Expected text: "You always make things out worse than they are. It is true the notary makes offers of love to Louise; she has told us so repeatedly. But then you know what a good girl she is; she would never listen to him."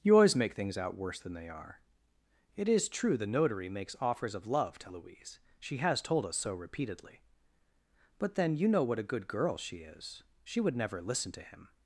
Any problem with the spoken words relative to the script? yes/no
no